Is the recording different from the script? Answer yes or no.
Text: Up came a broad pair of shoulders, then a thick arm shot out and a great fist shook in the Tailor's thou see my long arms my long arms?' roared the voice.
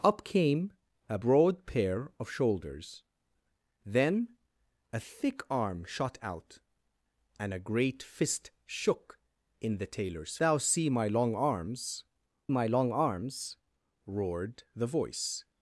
no